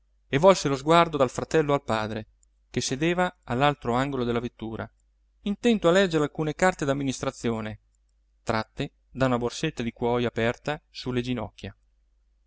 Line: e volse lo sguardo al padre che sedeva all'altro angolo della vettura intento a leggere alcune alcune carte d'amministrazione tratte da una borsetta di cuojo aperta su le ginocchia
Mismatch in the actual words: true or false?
true